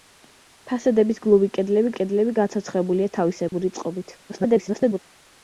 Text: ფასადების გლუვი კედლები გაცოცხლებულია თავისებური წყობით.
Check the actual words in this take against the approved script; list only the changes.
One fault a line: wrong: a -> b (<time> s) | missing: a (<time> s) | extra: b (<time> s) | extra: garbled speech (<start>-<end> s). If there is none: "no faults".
extra: კედლები (2.0 s)
extra: garbled speech (4.3-5.0 s)